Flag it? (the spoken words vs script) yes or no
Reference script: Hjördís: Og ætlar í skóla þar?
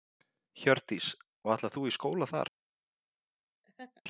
yes